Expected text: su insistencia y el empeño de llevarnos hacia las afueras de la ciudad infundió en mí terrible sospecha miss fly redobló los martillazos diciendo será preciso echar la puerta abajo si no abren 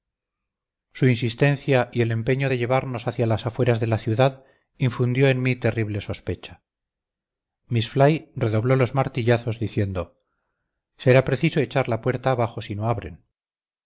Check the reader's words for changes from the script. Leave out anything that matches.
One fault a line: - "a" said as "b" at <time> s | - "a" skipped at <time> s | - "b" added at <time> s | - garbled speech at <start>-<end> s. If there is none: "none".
none